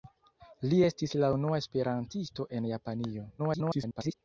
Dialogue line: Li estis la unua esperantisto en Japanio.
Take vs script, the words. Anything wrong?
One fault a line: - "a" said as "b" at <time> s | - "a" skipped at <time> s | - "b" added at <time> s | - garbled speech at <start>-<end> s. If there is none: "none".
- garbled speech at 3.4-4.1 s